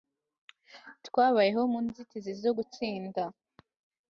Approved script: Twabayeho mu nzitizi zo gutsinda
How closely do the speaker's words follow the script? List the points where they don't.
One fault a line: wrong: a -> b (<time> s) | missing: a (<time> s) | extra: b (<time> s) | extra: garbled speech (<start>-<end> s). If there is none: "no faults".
no faults